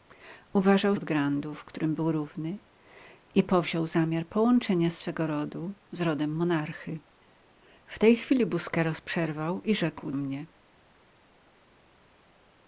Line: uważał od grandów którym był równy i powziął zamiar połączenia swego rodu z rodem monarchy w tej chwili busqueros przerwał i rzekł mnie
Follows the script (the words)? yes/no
yes